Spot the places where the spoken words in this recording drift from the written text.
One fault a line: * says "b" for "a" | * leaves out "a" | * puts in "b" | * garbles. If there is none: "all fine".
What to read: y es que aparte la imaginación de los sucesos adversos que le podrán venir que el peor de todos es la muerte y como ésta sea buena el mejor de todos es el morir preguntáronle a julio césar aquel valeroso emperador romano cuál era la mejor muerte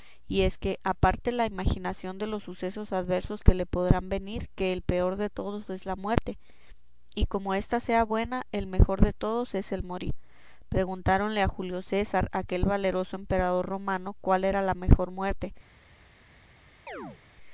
all fine